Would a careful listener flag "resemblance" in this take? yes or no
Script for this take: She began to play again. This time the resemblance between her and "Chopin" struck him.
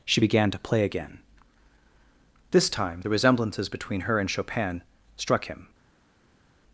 yes